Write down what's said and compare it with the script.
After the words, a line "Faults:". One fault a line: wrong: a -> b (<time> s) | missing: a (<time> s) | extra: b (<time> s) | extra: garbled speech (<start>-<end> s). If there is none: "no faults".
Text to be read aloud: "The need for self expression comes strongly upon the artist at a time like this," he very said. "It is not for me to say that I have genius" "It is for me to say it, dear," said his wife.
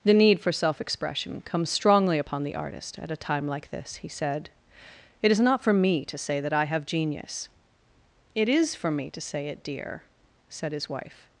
"The need for self expression comes strongly upon the artist at a time like this," he said. "It is not for me to say that I have genius" "It is for me to say it, dear," said his wife.
Faults:
missing: very (4.1 s)